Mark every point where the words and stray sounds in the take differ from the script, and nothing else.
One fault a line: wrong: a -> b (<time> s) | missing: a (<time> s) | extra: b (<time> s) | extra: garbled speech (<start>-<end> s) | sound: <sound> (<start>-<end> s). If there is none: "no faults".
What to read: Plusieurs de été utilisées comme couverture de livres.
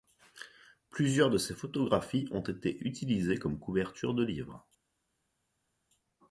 extra: ses photographies ont (1.4 s)